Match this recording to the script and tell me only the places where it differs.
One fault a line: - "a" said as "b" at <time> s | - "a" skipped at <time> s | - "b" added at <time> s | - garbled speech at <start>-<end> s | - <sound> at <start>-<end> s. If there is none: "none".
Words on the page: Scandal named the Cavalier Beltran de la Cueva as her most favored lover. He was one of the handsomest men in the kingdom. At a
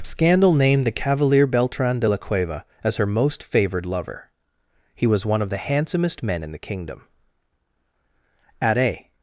none